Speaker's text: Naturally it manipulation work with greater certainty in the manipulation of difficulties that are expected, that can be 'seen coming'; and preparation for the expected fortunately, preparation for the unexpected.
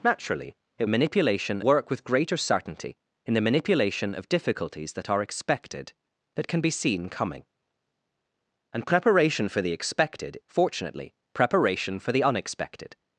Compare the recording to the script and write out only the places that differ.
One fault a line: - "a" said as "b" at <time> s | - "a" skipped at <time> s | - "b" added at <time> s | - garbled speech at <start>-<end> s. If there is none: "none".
none